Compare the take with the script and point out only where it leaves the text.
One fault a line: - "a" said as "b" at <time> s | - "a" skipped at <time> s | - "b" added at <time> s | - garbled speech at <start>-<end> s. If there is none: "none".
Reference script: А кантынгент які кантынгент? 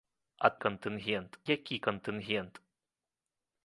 none